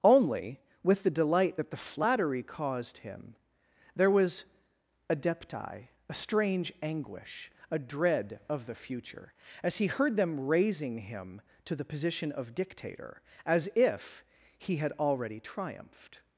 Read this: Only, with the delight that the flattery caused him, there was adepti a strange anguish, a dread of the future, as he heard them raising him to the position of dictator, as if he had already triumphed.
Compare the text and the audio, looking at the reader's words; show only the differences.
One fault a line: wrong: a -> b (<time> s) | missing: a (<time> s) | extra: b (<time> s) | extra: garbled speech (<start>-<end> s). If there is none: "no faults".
no faults